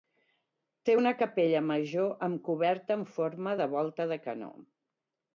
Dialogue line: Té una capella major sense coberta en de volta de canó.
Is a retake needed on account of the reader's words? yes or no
yes